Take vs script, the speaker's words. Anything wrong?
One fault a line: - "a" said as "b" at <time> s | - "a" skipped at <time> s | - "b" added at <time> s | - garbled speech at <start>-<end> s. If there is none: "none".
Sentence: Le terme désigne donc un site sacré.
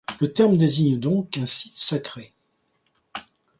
none